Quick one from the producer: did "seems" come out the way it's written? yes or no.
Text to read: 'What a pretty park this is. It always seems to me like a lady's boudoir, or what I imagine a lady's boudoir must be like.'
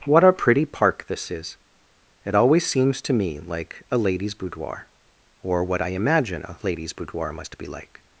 yes